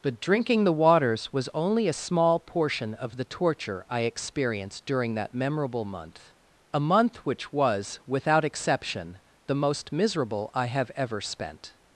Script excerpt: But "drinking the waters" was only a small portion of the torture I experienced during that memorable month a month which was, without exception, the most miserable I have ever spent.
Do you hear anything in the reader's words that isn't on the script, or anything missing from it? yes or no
no